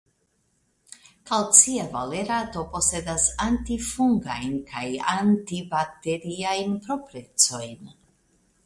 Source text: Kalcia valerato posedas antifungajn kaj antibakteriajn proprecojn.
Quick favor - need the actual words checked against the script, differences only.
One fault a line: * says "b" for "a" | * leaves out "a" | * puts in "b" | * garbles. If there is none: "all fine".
all fine